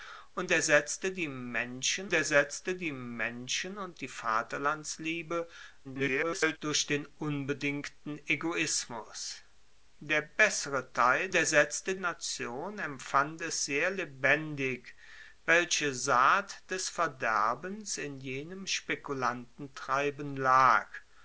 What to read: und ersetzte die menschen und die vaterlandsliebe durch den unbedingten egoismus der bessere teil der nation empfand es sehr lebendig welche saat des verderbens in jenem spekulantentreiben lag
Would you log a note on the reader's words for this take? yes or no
yes